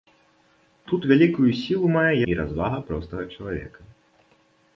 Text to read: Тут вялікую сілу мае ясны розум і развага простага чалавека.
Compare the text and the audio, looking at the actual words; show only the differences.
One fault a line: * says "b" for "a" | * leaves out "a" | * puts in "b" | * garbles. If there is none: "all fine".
* leaves out "ясны розум"